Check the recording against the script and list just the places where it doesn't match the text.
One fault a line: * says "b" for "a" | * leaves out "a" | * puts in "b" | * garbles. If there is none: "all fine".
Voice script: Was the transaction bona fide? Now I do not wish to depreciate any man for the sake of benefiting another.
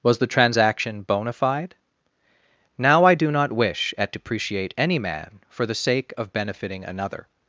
* says "at" for "to"